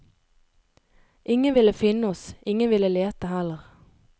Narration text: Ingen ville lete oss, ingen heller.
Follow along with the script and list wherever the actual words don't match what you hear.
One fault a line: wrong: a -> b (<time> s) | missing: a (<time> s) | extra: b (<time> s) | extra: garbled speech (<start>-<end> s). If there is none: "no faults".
wrong: lete -> finne (1.7 s)
extra: ville lete (2.7 s)